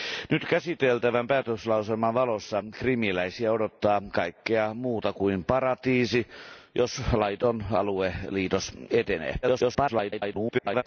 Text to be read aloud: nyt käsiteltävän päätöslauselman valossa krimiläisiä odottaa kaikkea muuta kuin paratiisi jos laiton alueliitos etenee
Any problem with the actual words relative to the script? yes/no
yes